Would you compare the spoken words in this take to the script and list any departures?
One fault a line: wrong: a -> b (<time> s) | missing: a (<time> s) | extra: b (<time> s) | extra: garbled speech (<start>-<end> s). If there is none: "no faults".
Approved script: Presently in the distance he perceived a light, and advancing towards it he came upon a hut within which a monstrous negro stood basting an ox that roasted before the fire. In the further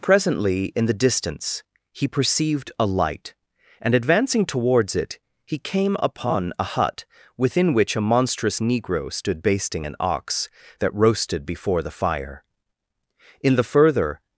no faults